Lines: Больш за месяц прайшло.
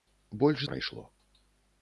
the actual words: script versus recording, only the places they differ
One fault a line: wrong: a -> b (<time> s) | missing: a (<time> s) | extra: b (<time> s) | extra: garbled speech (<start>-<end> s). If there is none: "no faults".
missing: за месяц (0.6 s)